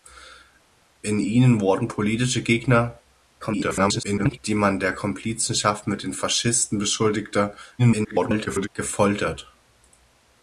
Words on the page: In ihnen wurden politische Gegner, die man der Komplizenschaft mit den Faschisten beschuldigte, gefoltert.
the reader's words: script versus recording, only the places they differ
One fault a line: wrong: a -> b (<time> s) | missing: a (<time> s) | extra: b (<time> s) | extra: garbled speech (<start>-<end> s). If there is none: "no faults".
extra: garbled speech (3.4-4.4 s)
extra: garbled speech (7.8-8.7 s)